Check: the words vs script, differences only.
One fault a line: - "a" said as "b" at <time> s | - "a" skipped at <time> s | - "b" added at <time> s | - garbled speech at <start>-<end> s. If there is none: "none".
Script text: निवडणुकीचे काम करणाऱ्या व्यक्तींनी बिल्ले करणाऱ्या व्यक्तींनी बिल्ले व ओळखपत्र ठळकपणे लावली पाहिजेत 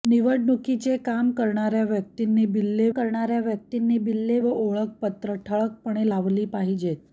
none